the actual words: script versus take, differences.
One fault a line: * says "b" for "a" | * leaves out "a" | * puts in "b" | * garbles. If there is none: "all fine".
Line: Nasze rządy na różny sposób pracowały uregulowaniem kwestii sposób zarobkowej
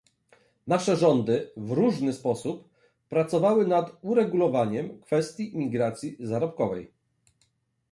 * says "w" for "na"
* puts in "nad"
* says "imigracji" for "sposób"